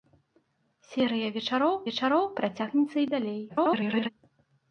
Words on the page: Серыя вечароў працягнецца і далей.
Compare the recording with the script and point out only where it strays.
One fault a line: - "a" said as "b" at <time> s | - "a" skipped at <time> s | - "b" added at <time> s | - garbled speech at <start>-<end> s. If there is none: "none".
- "вечароў" added at 1.9 s
- garbled speech at 3.5-4.1 s